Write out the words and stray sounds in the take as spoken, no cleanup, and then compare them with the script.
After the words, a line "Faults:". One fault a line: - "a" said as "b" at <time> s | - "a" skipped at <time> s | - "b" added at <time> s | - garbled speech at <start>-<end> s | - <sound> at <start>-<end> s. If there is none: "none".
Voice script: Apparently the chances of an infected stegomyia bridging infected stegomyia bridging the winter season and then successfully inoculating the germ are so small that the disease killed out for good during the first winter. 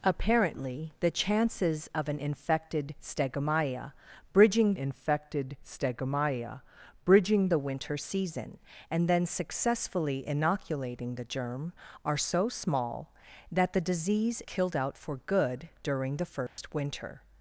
Apparently the chances of an infected stegomyia bridging infected stegomyia bridging the winter season and then successfully inoculating the germ are so small that the disease killed out for good during the first winter.
Faults:
- dropout at 16.5-16.6 s